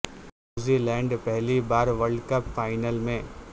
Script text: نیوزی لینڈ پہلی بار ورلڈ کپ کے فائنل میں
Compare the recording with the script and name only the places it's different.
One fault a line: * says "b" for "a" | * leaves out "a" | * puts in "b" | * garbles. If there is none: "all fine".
* leaves out "کے"